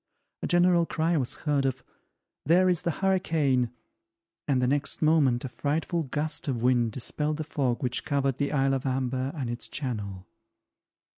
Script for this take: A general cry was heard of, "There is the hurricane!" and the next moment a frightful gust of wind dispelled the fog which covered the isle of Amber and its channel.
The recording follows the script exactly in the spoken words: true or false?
true